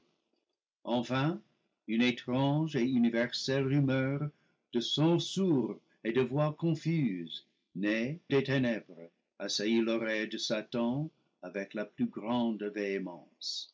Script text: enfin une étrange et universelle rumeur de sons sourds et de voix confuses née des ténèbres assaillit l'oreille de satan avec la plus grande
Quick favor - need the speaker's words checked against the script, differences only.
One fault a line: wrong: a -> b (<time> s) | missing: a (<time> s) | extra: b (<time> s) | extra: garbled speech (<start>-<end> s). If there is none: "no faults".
no faults